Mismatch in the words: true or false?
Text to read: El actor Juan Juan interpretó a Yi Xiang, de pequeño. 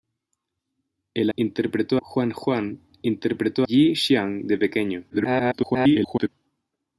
true